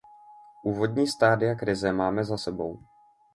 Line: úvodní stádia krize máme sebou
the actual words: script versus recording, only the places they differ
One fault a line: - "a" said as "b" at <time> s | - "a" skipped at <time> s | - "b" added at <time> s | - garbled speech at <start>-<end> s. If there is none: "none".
- "za" added at 2.2 s